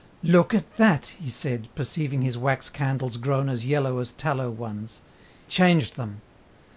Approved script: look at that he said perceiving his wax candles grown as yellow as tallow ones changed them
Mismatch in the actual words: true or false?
false